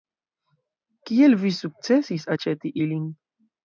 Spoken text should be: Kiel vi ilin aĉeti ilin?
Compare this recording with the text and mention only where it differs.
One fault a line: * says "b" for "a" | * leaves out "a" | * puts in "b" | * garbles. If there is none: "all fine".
* says "sukcesis" for "ilin"